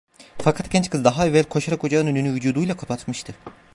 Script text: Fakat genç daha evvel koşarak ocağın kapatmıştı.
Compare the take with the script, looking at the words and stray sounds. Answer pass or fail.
fail